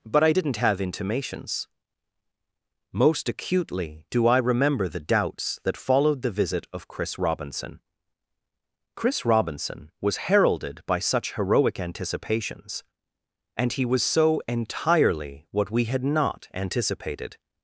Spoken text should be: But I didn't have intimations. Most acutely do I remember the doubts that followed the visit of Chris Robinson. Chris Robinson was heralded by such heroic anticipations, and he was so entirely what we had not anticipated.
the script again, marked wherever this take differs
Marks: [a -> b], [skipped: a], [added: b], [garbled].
But I didn't have intimations. Most acutely do I remember the doubts that followed the visit of Chris Robinson. Chris Robinson was heralded by such heroic anticipations, and he was so entirely what we had not anticipated.